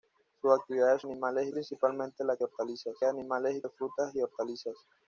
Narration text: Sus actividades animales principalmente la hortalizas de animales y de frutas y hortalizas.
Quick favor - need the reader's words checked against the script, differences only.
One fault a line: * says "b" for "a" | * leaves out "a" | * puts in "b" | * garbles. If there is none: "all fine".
all fine